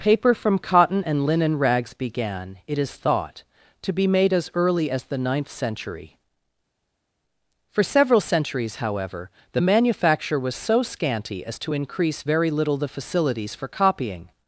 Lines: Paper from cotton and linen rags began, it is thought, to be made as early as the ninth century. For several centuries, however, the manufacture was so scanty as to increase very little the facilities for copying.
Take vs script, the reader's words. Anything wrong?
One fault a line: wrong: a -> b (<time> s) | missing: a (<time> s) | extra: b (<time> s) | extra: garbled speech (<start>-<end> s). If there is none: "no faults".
no faults